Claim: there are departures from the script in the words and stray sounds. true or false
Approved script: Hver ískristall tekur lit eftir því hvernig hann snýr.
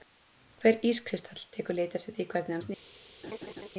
true